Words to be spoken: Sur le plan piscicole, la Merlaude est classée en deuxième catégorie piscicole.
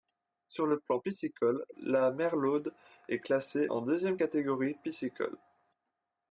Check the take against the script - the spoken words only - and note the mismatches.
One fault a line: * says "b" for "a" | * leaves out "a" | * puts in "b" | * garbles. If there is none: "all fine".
all fine